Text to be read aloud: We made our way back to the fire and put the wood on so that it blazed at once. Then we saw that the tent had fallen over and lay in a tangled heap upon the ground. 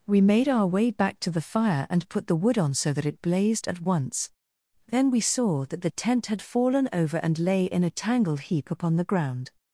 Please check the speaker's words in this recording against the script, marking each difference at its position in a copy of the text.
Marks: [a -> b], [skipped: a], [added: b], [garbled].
We made our way back to the fire and put the wood on so that it blazed at once. Then we saw that the tent had fallen over and lay in a tangled heap upon the ground.